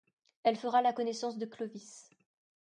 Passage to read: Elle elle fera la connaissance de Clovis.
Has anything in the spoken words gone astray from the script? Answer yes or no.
yes